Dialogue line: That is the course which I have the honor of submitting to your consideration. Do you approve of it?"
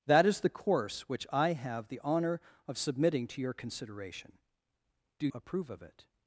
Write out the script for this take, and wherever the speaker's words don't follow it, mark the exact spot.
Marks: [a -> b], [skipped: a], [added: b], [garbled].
That is the course which I have the honor of submitting to your consideration. Do [skipped: you] approve of it?"